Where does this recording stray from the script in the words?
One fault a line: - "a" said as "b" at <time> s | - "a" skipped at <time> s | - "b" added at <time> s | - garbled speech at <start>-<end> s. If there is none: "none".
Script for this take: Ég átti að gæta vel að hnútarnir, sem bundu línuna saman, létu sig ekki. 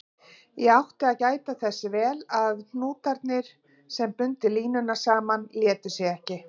- "þess" added at 1.6 s